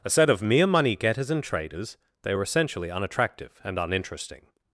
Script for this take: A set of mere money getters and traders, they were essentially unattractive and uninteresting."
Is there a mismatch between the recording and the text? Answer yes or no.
no